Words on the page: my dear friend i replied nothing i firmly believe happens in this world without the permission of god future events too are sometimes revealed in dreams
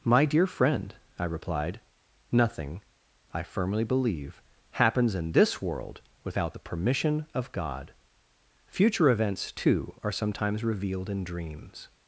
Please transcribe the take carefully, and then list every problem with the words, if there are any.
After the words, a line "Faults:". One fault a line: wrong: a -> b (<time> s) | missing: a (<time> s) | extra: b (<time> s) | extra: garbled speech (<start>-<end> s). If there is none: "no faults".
my dear friend i replied nothing i firmly believe happens in this world without the permission of god future events too are sometimes revealed in dreams
Faults:
no faults